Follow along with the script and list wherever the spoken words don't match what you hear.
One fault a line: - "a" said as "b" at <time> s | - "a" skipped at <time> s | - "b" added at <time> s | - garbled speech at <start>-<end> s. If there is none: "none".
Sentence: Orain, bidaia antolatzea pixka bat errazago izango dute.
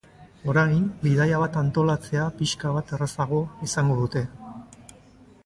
- "bat" added at 1.4 s